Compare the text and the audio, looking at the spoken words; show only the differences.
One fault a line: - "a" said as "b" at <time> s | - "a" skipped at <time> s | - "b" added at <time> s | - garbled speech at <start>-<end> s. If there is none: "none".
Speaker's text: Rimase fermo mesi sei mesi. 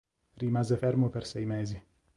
- "mesi" said as "per" at 1.1 s